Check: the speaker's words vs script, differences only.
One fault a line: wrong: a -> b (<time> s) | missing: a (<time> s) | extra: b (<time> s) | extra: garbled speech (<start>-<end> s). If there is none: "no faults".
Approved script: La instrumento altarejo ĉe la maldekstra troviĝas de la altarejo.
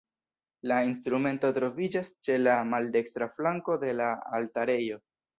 wrong: altarejo -> troviĝas (1.6 s)
wrong: troviĝas -> flanko (3.4 s)